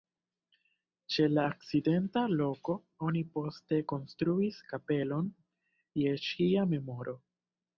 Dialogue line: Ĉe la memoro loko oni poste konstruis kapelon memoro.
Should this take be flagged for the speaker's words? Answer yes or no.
yes